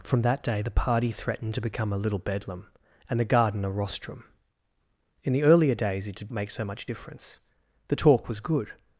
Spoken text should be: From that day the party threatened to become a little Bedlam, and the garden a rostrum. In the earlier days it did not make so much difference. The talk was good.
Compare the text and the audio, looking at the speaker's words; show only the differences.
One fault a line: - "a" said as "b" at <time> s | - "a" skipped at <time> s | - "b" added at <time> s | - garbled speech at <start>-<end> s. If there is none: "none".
- "not" skipped at 6.3 s